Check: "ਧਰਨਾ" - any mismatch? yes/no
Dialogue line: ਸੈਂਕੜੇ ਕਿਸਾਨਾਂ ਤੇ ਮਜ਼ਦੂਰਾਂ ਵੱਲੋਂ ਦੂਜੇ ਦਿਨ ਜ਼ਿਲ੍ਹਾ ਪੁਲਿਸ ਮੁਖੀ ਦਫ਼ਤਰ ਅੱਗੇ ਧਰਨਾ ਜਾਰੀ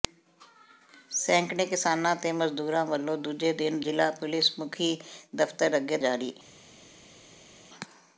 yes